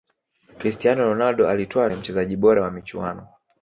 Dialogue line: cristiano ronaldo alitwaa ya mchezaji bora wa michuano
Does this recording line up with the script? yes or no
yes